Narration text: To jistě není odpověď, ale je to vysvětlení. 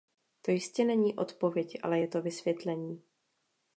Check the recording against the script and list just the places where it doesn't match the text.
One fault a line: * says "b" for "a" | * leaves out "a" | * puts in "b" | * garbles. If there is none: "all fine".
all fine